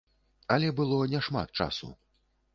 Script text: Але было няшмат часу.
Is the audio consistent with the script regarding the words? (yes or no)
yes